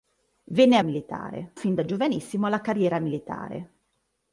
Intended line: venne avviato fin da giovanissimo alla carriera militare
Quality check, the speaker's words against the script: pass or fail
fail